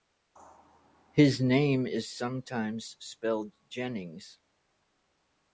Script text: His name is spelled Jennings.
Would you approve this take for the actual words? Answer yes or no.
no